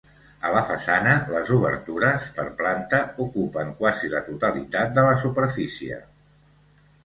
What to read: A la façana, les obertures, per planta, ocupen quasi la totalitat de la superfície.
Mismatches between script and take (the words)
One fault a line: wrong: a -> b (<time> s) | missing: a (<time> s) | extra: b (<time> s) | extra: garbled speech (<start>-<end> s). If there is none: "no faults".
no faults